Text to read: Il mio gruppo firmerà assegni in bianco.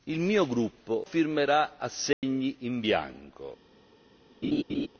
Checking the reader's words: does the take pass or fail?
pass